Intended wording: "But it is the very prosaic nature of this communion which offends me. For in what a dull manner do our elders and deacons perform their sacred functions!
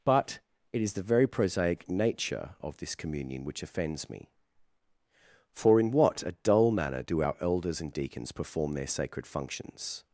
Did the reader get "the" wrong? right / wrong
right